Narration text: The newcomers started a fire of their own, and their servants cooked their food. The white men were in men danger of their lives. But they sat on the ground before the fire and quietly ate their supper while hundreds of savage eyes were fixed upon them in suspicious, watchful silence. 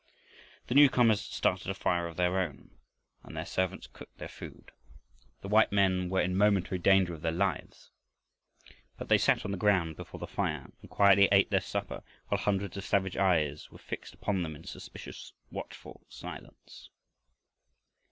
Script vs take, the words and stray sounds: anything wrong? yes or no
yes